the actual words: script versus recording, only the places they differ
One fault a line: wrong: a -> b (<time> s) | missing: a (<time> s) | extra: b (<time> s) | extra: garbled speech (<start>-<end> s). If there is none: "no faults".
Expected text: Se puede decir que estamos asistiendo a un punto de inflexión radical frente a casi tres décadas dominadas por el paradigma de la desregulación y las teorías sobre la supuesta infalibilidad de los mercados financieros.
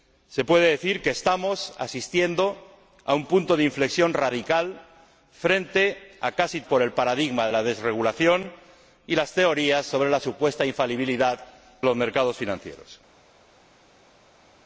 missing: tres décadas dominadas (6.6 s)
missing: de (7.5 s)
missing: de (11.4 s)